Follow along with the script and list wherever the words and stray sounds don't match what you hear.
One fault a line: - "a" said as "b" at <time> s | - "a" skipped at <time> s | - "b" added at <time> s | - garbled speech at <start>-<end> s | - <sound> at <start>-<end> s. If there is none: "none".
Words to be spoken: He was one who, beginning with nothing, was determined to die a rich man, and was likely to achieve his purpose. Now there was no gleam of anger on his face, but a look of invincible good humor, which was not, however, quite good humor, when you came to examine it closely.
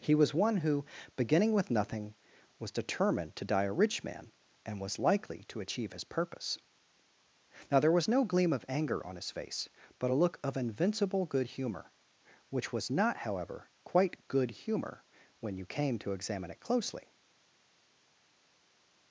none